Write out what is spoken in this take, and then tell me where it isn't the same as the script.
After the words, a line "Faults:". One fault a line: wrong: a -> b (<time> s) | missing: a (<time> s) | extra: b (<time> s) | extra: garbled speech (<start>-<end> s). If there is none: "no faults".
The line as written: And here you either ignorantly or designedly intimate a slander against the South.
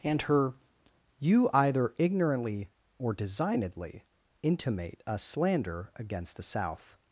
And her you either ignorantly or designedly intimate a slander against the South.
Faults:
wrong: here -> her (0.2 s)